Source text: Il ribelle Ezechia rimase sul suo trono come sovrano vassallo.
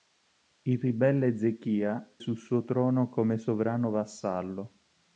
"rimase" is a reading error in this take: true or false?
true